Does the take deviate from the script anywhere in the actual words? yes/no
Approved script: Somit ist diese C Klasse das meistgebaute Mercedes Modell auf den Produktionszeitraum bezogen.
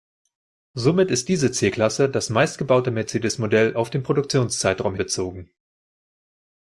no